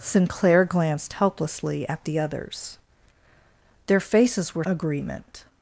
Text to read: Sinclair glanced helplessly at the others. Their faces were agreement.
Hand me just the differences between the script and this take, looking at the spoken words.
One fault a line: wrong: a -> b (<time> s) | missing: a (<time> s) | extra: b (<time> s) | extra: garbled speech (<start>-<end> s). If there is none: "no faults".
no faults